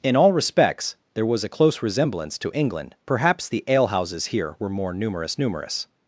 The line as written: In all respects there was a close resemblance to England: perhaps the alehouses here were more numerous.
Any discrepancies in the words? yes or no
yes